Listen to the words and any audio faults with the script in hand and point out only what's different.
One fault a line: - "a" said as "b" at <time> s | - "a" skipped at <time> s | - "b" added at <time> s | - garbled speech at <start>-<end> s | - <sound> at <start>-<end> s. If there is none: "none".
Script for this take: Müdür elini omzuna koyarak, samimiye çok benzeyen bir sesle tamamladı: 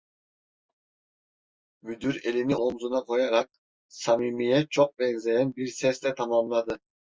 none